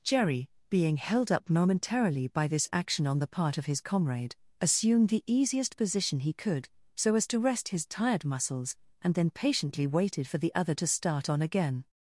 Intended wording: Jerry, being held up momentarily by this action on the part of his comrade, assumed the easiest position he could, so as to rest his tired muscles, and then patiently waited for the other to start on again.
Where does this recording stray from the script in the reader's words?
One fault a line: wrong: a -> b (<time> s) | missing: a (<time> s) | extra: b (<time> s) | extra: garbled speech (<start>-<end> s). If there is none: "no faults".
no faults